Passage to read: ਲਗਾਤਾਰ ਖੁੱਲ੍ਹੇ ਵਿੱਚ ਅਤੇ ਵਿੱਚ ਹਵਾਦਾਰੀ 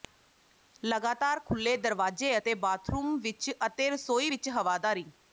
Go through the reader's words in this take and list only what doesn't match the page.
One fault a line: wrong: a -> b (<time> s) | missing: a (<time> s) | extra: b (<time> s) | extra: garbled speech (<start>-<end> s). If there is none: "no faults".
extra: ਦਰਵਾਜ਼ੇ ਅਤੇ ਬਾਥਰੂਮ (1.8 s)
extra: ਰਸੋਈ (3.9 s)